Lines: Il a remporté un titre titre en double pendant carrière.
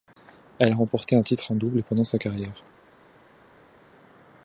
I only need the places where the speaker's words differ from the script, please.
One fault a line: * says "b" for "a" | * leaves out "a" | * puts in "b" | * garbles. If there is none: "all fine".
* says "Elle" for "Il"
* leaves out "titre"
* puts in "sa"